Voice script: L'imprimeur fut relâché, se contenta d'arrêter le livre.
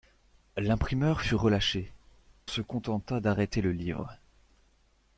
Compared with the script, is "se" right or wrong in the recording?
right